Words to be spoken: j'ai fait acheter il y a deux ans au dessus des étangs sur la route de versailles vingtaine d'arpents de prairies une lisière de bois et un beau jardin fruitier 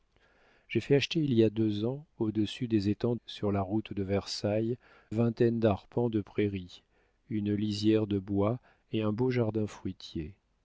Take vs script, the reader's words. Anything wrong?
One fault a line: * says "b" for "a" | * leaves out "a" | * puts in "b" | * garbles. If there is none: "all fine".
all fine